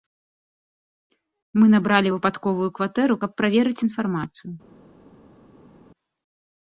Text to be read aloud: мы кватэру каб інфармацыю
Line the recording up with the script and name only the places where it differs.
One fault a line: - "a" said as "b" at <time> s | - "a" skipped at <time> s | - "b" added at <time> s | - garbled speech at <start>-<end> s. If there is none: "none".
- "набралі выпадковую" added at 1.7 s
- "праверыць" added at 3.4 s